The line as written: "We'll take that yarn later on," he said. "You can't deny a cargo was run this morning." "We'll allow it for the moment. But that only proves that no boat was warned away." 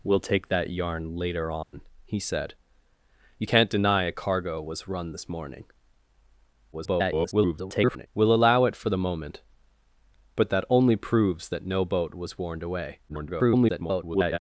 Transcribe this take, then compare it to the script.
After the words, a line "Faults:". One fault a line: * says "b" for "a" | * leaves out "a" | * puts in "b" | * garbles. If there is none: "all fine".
"We'll take that yarn later on," he said. "You can't deny a cargo was run this morning." [garbled] "We'll allow it for the moment. But that only proves that no boat was warned away." [garbled]
Faults:
* garbles
* garbles